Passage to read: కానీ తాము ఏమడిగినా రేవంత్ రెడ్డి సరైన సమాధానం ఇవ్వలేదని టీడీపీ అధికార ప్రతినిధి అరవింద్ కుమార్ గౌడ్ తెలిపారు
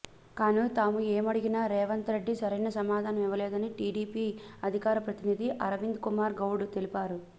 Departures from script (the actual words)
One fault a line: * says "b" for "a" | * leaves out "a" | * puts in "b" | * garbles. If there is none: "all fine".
all fine